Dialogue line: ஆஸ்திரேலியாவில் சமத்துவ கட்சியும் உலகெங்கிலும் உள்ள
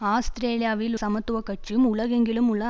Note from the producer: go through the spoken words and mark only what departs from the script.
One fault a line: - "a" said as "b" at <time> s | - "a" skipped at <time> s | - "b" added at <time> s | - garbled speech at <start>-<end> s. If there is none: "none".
none